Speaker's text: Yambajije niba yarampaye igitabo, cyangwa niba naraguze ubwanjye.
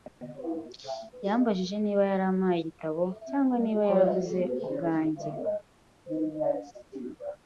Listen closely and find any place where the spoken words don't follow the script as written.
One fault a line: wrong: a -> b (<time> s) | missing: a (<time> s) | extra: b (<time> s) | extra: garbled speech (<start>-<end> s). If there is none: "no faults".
no faults